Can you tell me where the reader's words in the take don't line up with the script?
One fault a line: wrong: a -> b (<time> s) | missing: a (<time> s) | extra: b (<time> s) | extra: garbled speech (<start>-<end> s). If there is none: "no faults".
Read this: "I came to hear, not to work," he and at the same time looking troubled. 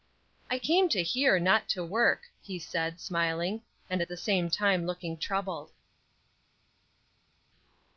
extra: said smiling (2.6 s)